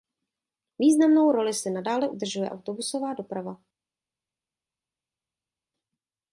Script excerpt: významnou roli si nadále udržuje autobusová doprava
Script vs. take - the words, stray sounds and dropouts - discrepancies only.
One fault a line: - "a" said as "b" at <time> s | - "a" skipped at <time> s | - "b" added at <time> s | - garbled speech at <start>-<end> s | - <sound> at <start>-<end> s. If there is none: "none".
none